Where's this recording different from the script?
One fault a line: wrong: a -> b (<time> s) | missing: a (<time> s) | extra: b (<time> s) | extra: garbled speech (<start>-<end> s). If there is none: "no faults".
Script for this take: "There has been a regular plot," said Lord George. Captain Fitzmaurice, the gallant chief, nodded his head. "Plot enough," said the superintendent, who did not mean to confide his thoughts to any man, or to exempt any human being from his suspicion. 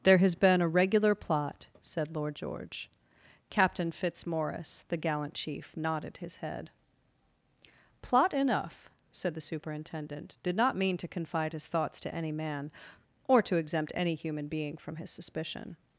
missing: who (10.4 s)